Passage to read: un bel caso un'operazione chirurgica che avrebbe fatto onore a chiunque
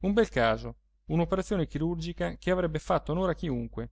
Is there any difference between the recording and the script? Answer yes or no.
no